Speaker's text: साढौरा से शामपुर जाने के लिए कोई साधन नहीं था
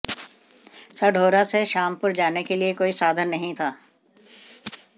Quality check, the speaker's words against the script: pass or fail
pass